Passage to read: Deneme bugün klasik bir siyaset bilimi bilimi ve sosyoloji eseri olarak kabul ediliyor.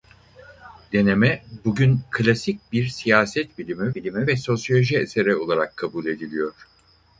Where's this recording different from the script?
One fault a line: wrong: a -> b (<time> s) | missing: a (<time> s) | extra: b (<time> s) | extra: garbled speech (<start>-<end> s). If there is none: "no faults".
no faults